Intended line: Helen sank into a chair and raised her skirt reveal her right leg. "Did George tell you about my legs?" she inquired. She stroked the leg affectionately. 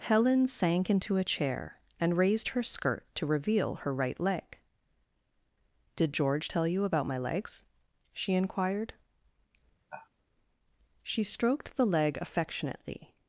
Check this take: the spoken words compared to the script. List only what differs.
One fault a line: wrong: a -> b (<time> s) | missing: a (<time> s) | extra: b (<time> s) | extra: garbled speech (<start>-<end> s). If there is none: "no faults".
extra: to (3.1 s)